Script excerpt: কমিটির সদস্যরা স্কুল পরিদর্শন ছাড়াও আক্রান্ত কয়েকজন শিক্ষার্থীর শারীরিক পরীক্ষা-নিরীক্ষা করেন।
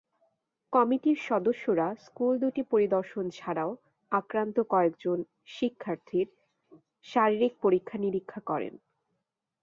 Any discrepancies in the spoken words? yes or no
yes